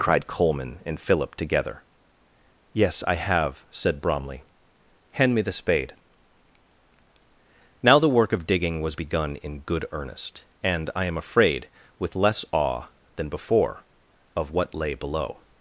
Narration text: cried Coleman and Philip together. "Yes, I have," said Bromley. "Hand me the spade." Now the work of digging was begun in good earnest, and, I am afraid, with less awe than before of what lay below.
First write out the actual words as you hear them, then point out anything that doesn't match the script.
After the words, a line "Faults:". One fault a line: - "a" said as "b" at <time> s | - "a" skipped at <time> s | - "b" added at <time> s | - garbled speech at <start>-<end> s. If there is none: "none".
cried Coleman and Philip together. "Yes, I have," said Bromley. "Hand me the spade." Now the work of digging was begun in good earnest, and, I am afraid, with less awe than before of what lay below.
Faults:
none